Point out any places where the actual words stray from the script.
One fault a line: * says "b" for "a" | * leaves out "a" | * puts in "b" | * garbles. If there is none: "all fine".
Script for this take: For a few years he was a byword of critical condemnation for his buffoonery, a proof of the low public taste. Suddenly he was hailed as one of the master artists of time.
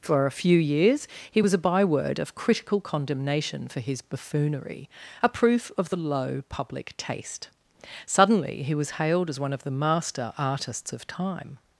all fine